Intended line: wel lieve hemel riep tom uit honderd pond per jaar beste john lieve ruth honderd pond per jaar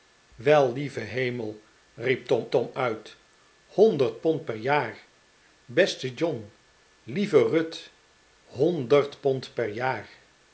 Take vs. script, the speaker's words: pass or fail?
fail